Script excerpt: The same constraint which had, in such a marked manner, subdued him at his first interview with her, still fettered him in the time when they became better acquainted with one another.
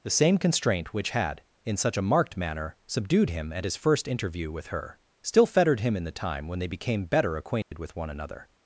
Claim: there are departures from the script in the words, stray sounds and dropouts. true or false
true